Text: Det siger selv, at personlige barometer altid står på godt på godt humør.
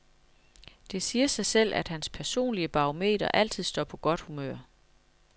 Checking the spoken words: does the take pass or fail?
fail